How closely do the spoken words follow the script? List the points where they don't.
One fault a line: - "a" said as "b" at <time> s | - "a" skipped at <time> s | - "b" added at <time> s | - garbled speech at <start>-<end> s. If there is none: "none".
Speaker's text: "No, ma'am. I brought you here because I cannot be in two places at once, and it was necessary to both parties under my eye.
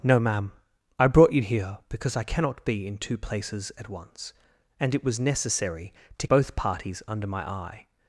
none